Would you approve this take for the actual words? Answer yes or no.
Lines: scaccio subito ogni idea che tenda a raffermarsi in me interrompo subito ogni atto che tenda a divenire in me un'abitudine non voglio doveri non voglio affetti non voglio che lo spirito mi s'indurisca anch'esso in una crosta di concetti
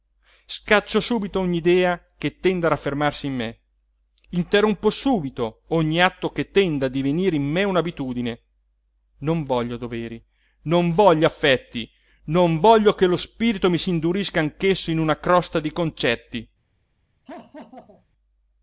yes